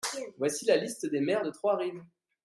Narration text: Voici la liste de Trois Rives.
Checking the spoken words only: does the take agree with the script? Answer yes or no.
no